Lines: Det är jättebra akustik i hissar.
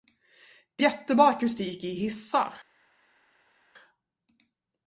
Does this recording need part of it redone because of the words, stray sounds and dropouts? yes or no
yes